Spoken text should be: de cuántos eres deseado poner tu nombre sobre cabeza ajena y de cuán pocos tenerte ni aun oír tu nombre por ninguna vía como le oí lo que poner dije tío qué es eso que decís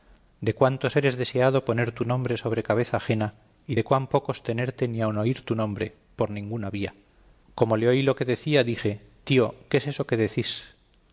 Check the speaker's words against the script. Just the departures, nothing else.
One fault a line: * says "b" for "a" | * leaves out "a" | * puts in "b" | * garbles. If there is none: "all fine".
* says "decía" for "poner"